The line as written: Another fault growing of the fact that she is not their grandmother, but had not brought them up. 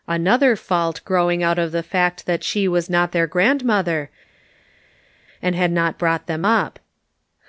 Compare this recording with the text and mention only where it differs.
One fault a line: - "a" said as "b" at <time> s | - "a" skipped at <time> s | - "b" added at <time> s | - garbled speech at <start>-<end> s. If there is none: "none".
- "out" added at 1.4 s
- "is" said as "was" at 2.7 s
- "but" said as "and" at 5.4 s